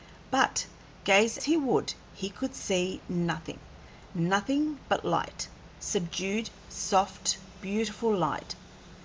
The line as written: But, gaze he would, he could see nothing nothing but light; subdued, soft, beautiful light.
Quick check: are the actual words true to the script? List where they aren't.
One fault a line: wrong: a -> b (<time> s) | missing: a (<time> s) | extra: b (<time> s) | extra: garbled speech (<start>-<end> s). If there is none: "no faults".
no faults